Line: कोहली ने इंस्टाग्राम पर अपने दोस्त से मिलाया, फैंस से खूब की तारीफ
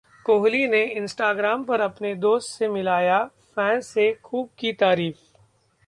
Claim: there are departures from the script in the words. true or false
false